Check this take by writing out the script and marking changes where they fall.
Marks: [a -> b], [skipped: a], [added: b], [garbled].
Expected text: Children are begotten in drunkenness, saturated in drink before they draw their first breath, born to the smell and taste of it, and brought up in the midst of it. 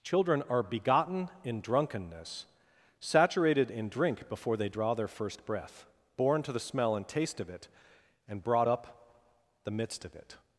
Children are begotten in drunkenness, saturated in drink before they draw their first breath, born to the smell and taste of it, and brought up [skipped: in] the midst of it.